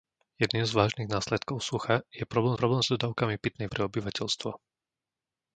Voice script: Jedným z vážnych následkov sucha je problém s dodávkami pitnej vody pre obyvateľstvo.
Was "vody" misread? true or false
true